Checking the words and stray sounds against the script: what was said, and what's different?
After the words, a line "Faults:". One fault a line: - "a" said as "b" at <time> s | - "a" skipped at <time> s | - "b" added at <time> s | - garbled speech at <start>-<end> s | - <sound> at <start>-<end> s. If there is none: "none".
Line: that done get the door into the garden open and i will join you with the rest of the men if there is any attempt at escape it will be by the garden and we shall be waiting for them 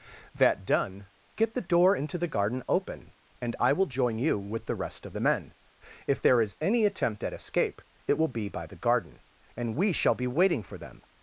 that done get the door into the garden open and i will join you with the rest of the men if there is any attempt at escape it will be by the garden and we shall be waiting for them
Faults:
none